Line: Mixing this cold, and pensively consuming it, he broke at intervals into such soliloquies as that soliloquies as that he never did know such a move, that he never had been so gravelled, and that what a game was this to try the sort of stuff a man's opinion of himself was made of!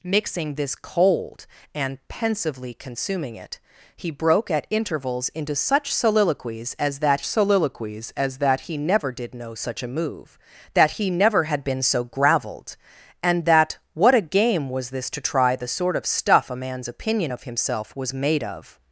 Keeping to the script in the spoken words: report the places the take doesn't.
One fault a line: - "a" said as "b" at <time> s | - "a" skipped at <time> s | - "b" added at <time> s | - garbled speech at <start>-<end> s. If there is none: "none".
none